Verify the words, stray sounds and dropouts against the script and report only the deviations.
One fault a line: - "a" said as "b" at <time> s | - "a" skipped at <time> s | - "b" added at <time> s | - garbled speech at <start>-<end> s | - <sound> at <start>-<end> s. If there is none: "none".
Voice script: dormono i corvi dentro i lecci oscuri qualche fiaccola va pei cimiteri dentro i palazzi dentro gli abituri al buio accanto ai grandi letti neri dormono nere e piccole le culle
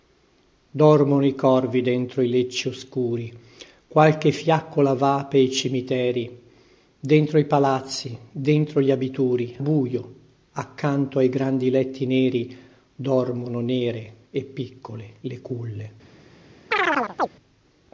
- "al" skipped at 9.6 s
- chirp at 16.7-17.3 s